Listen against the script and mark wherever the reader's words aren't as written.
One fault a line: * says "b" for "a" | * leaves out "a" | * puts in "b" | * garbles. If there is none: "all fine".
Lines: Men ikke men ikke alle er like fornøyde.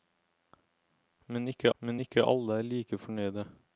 all fine